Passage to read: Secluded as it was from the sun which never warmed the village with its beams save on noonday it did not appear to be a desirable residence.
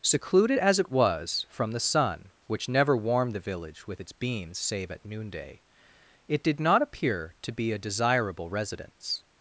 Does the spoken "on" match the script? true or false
false